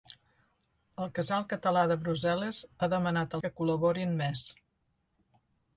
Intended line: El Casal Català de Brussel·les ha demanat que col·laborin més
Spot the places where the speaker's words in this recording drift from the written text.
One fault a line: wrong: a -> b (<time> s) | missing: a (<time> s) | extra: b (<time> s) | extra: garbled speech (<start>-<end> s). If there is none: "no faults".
no faults